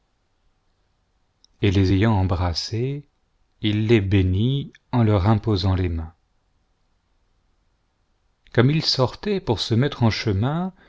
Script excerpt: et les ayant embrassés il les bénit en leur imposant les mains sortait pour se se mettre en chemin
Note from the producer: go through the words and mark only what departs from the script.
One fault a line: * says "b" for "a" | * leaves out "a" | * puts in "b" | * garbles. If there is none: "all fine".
* puts in "comme il"
* leaves out "se"